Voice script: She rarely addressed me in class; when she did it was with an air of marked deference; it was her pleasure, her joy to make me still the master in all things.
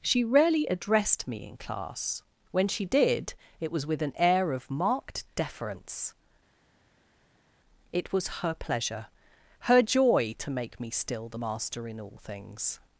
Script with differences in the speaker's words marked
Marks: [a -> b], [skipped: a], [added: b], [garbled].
She rarely addressed me in class; when she did it was with an air of marked deference; it was her pleasure, her joy to make me still the master in all things.